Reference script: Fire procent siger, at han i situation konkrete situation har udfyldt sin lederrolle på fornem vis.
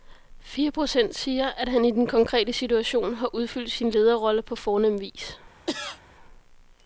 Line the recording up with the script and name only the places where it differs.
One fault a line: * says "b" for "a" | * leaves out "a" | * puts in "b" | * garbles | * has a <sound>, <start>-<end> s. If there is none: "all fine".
* says "den" for "situation"
* has a cough, 5.7-6.0 s